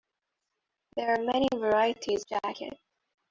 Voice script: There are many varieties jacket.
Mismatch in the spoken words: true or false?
false